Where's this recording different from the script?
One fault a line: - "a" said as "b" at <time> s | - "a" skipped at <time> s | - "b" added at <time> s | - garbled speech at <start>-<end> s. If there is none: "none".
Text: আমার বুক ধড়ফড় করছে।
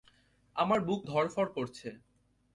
none